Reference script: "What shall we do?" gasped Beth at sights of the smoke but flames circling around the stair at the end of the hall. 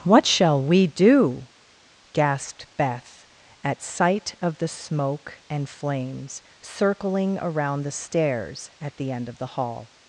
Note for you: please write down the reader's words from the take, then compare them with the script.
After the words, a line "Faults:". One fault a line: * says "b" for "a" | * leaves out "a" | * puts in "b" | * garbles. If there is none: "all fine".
"What shall we do?" gasped Beth at sight of the smoke and flames circling around the stairs at the end of the hall.
Faults:
* says "sight" for "sights"
* says "and" for "but"
* says "stairs" for "stair"